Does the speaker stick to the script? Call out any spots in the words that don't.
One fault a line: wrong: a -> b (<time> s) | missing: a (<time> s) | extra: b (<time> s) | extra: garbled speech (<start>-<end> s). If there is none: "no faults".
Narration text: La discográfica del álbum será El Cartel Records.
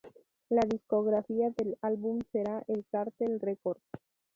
no faults